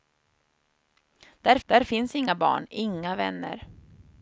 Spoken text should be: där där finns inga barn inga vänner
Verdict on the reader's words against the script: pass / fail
pass